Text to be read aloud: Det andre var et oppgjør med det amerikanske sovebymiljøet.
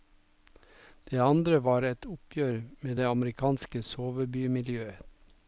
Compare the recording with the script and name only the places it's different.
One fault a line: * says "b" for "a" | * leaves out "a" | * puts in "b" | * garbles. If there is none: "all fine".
all fine